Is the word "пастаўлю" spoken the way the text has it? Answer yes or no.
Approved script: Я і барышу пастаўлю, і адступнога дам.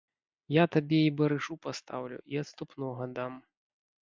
yes